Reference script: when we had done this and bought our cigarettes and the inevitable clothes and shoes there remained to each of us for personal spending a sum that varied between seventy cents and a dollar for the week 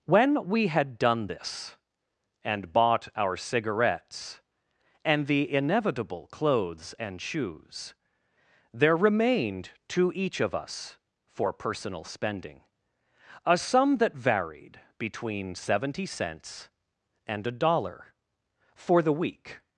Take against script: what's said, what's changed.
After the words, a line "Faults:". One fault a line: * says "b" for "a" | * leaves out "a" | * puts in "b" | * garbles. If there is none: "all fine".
when we had done this and bought our cigarettes and the inevitable clothes and shoes there remained to each of us for personal spending a sum that varied between seventy cents and a dollar for the week
Faults:
all fine